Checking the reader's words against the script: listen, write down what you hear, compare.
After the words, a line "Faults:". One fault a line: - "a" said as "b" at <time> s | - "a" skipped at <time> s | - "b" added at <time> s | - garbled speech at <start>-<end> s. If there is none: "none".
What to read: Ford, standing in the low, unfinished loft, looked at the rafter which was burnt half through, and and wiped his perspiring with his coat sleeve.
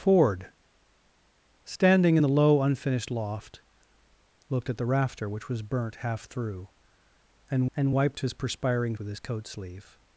Ford, standing in the low, unfinished loft, looked at the rafter which was burnt half through, and and wiped his perspiring with his coat sleeve.
Faults:
none